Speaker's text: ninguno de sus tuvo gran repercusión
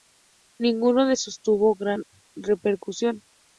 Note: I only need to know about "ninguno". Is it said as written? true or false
true